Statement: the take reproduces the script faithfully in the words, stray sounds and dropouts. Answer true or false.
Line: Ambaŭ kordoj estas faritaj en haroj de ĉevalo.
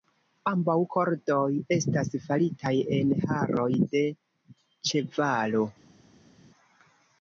true